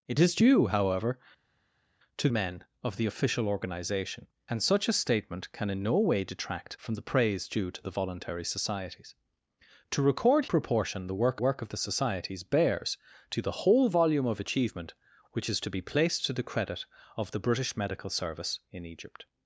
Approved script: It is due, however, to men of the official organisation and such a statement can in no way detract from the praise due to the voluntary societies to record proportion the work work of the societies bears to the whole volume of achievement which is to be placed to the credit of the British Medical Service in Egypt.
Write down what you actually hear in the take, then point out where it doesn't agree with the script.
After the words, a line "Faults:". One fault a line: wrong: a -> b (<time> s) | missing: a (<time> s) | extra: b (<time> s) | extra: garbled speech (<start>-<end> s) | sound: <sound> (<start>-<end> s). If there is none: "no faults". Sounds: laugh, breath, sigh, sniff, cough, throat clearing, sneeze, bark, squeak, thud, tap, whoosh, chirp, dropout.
It is due, however, to men of the official organisation and such a statement can in no way detract from the praise due to the voluntary societies to record proportion the work work of the societies bears to the whole volume of achievement which is to be placed to the credit of the British Medical Service in Egypt.
Faults:
no faults